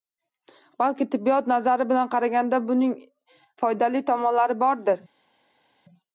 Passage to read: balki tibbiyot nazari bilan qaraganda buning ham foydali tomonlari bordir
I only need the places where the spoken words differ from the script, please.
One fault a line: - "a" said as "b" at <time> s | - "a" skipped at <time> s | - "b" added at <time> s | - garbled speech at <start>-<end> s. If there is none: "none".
- "ham" skipped at 3.0 s